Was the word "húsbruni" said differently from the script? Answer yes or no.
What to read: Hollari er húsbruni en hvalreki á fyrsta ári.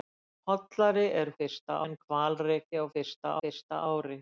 yes